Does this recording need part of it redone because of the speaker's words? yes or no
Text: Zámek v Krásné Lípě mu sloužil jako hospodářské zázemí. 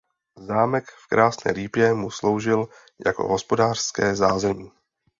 no